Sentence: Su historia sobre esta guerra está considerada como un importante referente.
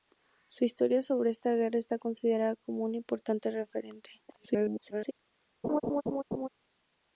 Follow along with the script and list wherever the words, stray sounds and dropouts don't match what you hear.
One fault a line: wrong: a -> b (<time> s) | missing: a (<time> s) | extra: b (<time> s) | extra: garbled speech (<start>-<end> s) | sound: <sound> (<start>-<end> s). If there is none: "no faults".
extra: garbled speech (4.3-5.1 s)
sound: laugh (5.6-6.5 s)